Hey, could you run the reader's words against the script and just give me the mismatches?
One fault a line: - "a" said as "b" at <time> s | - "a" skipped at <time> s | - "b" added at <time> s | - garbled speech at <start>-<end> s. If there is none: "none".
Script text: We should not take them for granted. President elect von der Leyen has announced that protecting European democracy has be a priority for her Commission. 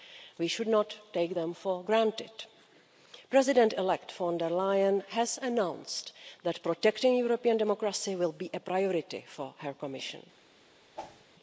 - "has" said as "will" at 8.1 s